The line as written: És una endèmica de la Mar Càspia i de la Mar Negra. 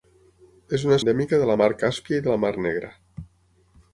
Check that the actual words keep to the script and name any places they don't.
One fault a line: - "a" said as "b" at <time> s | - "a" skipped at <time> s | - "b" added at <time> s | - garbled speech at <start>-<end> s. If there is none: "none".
none